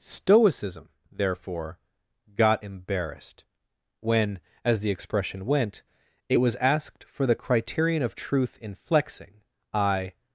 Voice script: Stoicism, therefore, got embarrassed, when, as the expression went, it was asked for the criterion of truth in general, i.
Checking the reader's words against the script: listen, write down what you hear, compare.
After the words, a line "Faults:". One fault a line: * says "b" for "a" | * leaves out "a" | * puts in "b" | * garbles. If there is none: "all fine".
Stoicism, therefore, got embarrassed, when, as the expression went, it was asked for the criterion of truth in flexing, i.
Faults:
* says "flexing" for "general"